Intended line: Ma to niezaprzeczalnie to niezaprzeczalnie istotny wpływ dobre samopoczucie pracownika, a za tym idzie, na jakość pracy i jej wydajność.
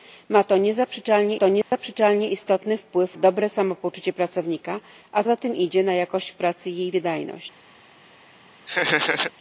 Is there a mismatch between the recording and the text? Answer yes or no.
no